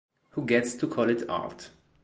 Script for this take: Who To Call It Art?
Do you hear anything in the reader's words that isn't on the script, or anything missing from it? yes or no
yes